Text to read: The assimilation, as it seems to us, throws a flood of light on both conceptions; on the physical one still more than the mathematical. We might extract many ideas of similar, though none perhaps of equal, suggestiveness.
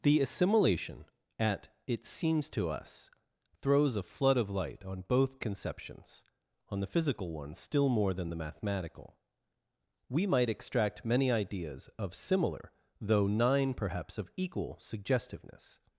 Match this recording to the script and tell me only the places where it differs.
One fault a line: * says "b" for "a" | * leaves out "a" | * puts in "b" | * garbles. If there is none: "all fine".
* says "at" for "as"
* says "nine" for "none"